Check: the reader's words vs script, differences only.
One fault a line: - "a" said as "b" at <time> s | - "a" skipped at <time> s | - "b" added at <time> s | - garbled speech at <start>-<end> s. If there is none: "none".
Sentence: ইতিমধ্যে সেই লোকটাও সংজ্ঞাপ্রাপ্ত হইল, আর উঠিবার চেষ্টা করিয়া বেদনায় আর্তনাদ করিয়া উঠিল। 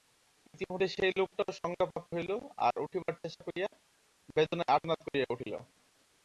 none